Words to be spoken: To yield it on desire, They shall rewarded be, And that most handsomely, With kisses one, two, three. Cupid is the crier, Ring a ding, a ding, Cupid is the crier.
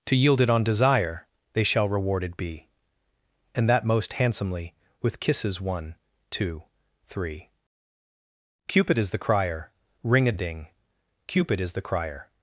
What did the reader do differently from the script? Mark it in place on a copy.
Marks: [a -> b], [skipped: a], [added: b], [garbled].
To yield it on desire, They shall rewarded be, And that most handsomely, With kisses one, two, three. Cupid is the crier, Ring a [skipped: ding,] a ding, Cupid is the crier.